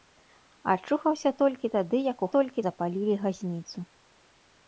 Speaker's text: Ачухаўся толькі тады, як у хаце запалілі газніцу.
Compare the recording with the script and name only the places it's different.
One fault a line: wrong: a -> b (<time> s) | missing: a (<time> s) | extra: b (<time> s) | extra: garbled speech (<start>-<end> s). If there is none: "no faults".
wrong: хаце -> толькі (2.3 s)